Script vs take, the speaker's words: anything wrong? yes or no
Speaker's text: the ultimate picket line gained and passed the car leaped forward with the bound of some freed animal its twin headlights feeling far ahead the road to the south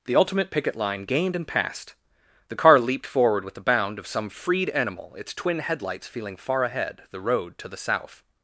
no